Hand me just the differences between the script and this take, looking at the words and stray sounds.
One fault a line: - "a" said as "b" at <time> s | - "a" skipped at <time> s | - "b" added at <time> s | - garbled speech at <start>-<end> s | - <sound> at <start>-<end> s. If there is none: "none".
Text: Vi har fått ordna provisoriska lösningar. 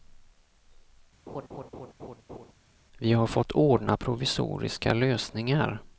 - laugh at 1.3-2.5 s